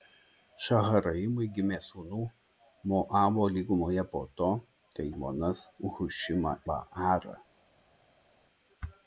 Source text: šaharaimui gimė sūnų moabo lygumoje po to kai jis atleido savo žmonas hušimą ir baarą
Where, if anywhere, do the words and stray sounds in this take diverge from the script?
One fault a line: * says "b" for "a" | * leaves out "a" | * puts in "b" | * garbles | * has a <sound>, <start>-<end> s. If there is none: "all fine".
* leaves out "jis atleido savo"
* leaves out "ir"